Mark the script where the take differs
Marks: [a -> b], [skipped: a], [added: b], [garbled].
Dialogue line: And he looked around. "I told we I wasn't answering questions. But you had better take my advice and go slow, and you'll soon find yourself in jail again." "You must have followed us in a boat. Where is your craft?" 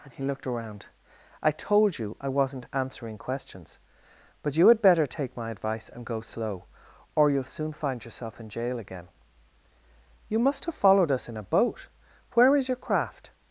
And he looked around. "I told [we -> you] I wasn't answering questions. But you had better take my advice and go slow, [and -> or] you'll soon find yourself in jail again." "You must have followed us in a boat. Where is your craft?"